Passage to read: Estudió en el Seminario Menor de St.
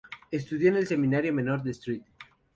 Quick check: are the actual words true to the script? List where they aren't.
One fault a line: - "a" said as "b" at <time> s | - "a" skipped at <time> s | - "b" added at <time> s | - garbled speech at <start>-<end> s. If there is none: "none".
none